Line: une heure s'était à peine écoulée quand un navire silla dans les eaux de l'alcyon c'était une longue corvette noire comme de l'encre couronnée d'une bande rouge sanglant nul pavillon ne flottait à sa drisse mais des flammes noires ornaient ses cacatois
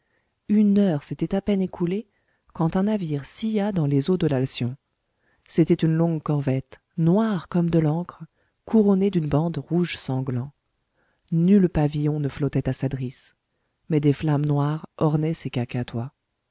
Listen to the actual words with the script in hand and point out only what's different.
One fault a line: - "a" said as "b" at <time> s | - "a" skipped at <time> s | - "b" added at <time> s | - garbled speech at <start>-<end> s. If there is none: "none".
none